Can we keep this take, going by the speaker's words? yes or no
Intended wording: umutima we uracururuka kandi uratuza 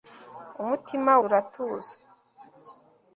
no